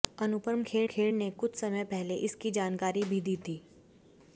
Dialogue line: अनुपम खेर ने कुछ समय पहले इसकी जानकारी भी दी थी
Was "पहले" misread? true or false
false